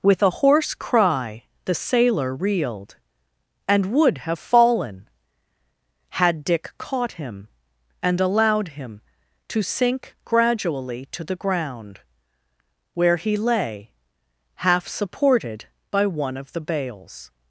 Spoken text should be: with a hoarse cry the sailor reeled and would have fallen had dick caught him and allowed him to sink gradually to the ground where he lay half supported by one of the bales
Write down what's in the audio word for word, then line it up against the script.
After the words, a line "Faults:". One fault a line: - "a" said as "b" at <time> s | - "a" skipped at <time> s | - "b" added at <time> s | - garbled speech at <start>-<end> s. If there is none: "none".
with a hoarse cry the sailor reeled and would have fallen had dick caught him and allowed him to sink gradually to the ground where he lay half supported by one of the bales
Faults:
none